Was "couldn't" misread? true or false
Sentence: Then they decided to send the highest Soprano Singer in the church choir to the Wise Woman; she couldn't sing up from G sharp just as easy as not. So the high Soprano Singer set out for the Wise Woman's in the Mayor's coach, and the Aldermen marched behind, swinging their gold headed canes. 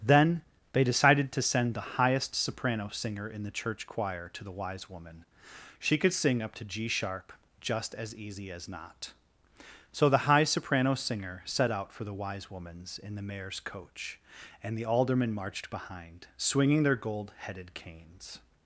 true